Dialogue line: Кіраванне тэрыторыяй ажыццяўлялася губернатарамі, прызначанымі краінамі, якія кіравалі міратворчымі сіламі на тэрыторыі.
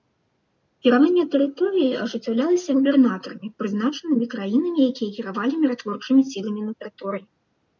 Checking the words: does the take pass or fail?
pass